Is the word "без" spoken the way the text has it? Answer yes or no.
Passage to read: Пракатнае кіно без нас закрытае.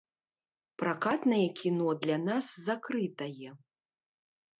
no